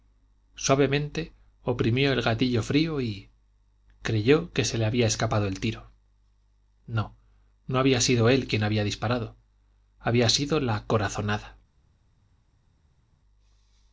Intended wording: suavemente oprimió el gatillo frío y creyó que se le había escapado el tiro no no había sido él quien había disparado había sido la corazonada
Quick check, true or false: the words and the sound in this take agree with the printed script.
true